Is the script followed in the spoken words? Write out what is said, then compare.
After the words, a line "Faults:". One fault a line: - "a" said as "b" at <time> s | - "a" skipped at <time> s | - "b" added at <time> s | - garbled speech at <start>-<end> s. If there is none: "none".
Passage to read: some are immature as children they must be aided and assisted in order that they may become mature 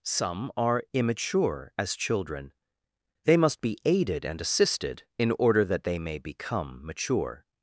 some are immature as children they must be aided and assisted in order that they may become mature
Faults:
none